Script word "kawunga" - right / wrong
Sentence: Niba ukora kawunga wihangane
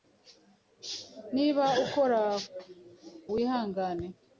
wrong